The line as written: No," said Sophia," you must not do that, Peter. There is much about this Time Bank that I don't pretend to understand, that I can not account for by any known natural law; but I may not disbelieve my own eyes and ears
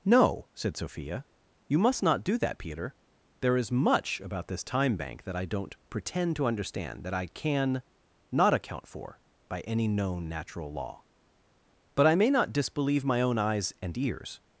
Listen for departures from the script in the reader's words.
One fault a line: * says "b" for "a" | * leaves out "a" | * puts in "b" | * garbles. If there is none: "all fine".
all fine